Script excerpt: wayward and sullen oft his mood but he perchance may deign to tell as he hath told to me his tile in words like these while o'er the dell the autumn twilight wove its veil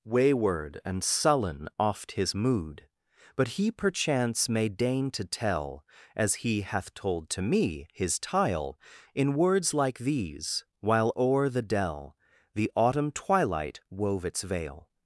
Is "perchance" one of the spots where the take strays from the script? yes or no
no